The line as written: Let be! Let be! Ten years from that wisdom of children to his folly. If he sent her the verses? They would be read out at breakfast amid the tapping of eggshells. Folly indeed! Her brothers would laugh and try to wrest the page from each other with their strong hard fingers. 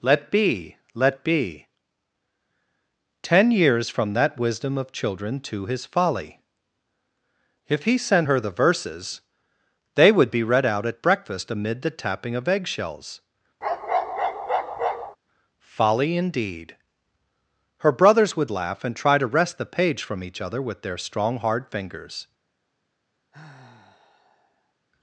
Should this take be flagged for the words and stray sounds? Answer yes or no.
yes